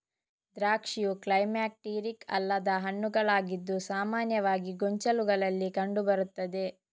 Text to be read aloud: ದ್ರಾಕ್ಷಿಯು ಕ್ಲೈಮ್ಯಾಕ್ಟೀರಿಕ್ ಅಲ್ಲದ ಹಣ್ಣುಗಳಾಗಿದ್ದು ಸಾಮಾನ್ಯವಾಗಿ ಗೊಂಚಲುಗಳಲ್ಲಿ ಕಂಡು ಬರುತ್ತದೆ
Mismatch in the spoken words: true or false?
false